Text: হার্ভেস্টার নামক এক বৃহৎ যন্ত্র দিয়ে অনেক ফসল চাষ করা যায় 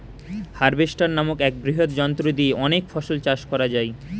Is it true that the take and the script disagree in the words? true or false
false